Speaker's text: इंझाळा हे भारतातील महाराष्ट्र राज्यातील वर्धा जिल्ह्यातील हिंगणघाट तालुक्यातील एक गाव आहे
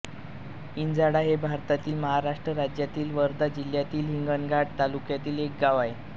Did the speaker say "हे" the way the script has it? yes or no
yes